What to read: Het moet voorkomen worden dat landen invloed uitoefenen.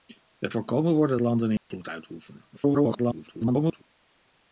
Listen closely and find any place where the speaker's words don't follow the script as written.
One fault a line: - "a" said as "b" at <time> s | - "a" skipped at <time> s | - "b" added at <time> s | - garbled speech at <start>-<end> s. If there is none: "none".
- "moet" skipped at 0.5 s
- "dat" skipped at 1.2 s
- garbled speech at 2.5-3.8 s